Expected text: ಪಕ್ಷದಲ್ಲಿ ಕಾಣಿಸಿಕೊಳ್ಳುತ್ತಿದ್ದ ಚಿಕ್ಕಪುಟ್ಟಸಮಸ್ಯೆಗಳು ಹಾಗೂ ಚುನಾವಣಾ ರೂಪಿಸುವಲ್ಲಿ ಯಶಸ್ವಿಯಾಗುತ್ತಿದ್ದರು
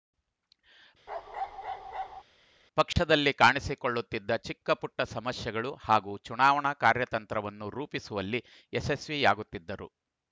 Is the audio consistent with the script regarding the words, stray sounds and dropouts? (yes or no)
no